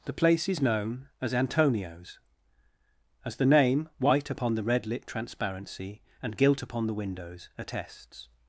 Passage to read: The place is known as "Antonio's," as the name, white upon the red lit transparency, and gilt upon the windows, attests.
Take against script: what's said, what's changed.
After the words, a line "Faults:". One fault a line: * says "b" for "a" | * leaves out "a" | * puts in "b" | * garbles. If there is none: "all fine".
The place is known as "Antonio's," as the name, white upon the red lit transparency, and gilt upon the windows, attests.
Faults:
all fine